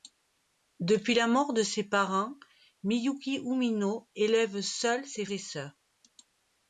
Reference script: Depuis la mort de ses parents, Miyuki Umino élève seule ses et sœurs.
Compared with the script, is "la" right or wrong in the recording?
right